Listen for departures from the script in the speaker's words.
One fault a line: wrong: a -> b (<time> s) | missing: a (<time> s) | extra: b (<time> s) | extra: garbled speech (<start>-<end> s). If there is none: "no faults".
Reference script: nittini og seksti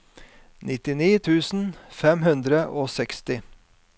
extra: tusen fem hundre (1.3 s)